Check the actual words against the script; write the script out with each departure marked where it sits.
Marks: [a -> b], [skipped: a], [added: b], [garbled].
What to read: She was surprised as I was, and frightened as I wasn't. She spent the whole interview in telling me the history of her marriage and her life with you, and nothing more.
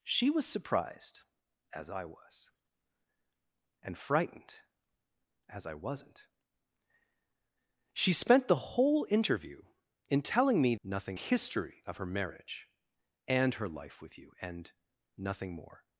She was surprised as I was, and frightened as I wasn't. She spent the whole interview in telling me [the -> nothing] history of her marriage and her life with you, and nothing more.